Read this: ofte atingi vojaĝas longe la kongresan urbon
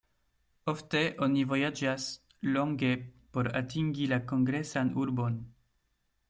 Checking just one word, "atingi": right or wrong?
wrong